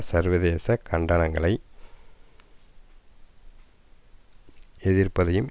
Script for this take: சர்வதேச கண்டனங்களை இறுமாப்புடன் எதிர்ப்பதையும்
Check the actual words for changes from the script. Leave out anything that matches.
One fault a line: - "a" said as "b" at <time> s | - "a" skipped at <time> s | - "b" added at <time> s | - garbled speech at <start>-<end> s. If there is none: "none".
- "இறுமாப்புடன்" skipped at 1.5 s